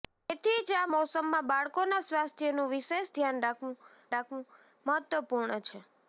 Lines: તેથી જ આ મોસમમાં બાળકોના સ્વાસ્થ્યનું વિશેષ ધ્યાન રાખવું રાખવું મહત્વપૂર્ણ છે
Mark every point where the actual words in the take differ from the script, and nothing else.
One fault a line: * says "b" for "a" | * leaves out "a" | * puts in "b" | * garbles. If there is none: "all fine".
all fine